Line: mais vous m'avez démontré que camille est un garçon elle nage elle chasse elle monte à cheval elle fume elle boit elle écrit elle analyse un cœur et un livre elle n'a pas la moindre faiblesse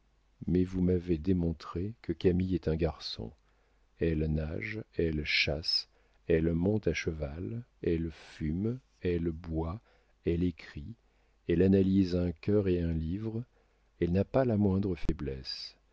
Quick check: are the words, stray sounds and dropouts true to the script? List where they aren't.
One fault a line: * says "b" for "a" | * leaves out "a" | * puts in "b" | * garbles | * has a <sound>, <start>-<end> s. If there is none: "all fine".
* has a dropout, 15.1-15.1 s